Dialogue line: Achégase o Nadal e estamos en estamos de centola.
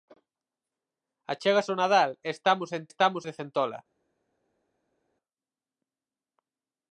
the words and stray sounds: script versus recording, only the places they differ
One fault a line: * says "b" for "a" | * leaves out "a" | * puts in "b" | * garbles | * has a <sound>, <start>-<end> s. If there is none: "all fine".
all fine